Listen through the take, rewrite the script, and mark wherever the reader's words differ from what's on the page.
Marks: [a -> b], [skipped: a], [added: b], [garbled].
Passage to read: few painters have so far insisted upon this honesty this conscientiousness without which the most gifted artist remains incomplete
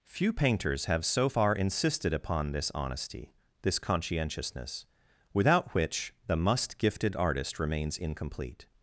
few painters have so far insisted upon this honesty this conscientiousness without which the [most -> must] gifted artist remains incomplete